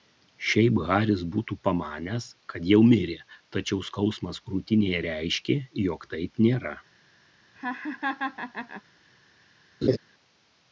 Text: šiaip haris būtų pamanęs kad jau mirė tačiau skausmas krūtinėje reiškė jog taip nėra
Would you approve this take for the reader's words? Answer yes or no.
yes